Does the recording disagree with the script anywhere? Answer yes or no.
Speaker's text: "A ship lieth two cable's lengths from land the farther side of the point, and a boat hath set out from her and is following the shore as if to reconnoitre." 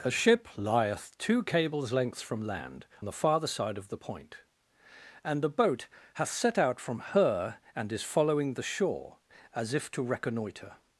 no